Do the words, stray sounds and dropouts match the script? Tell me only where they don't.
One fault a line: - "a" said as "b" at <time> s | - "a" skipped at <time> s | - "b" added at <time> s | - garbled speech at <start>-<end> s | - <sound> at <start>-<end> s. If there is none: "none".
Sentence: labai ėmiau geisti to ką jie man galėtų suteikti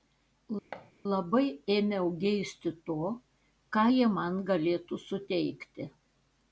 - thud at 0.7-0.9 s